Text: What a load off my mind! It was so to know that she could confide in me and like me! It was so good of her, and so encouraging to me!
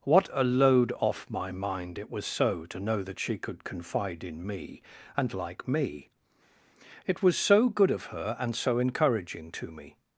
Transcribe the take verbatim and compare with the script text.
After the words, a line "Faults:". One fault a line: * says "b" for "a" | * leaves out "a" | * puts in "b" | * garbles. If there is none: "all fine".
What a load off my mind! It was so to know that she could confide in me and like me! It was so good of her, and so encouraging to me!
Faults:
all fine